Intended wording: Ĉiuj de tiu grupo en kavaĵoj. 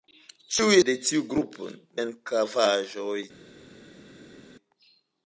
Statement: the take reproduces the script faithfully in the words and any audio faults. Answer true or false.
true